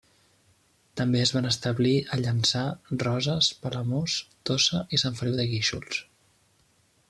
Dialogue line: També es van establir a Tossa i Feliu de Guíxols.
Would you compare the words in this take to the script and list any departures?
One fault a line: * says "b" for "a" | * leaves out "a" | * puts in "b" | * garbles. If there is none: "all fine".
* puts in "Llançà Roses Palamós"
* puts in "Sant"